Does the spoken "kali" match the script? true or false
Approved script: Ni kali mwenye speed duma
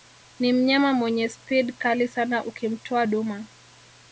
false